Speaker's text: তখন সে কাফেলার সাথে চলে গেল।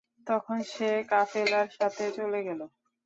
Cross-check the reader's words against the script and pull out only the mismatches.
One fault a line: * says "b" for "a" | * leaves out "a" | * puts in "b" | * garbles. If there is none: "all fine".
all fine